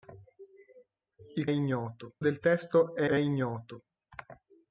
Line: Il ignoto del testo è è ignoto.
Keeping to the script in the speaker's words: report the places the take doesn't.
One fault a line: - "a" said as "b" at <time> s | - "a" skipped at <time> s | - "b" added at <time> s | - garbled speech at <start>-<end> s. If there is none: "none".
none